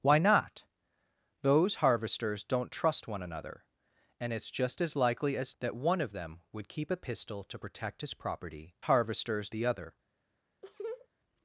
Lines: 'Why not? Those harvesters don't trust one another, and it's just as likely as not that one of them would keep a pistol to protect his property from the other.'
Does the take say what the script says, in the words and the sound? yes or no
no